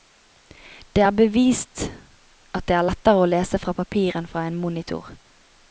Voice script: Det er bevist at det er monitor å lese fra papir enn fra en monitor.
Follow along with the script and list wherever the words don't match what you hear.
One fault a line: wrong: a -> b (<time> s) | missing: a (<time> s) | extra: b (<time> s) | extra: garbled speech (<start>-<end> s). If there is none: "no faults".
wrong: monitor -> lettere (2.8 s)